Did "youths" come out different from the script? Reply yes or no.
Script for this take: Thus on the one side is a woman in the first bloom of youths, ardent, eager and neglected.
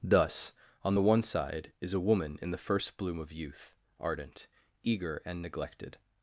yes